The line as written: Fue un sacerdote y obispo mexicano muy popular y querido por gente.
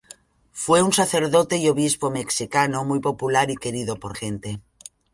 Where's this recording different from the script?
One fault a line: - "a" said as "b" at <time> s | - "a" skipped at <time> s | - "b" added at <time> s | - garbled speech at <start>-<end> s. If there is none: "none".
none